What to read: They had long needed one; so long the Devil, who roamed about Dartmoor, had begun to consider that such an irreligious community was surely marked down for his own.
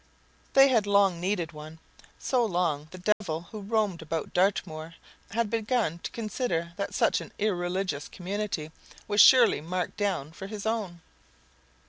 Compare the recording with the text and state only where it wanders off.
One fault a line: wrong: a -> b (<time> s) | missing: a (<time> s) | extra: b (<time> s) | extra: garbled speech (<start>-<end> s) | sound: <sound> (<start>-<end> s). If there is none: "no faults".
sound: dropout (3.1-3.2 s)